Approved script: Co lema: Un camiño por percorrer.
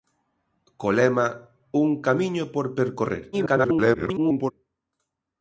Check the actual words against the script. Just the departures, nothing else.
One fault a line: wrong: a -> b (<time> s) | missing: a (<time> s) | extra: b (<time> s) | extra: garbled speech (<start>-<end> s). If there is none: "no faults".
extra: garbled speech (3.3-4.5 s)